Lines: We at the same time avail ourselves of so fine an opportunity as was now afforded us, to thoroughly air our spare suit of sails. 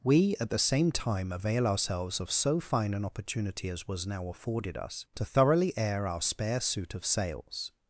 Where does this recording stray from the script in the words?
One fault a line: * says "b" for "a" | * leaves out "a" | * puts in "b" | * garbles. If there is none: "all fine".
all fine